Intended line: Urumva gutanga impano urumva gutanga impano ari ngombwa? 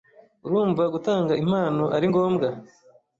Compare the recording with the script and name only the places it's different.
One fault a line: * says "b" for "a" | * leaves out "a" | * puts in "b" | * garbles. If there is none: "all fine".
* leaves out "urumva gutanga impano"